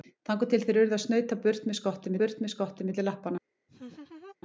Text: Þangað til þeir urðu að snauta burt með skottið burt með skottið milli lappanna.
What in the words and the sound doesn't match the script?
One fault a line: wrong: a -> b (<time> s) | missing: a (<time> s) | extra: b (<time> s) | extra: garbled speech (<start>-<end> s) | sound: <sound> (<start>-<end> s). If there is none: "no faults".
sound: laugh (3.7-4.4 s)